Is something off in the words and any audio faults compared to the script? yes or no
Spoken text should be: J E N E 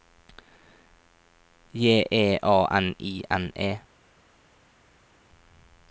yes